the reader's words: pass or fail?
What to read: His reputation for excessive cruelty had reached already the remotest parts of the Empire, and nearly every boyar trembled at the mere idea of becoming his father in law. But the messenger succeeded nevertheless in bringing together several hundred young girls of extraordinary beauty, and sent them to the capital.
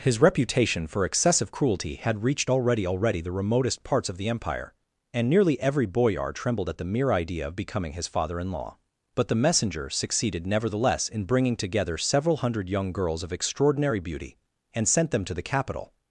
fail